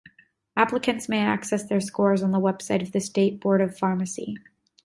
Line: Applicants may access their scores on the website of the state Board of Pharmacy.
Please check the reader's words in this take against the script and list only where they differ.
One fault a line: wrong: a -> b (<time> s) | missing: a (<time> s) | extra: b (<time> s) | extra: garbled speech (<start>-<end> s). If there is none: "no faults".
no faults